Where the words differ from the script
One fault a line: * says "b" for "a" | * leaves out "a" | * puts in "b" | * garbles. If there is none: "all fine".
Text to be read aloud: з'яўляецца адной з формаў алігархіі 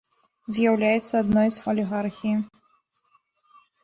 * leaves out "формаў"